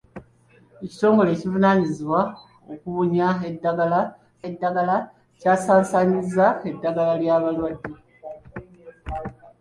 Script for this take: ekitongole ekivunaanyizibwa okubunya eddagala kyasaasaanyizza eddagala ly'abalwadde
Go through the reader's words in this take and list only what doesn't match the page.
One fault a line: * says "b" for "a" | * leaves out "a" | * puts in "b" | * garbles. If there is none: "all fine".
* puts in "eddagala"